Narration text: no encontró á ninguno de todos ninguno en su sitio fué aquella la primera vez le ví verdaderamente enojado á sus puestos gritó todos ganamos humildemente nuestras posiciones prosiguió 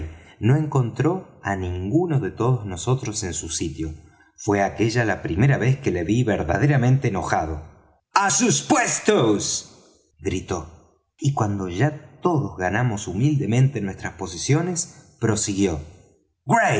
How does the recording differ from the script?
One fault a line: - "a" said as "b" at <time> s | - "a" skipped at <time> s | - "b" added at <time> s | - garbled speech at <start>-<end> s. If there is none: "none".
- "ninguno" said as "nosotros" at 2.6 s
- "que" added at 5.8 s
- "y cuando ya" added at 11.2 s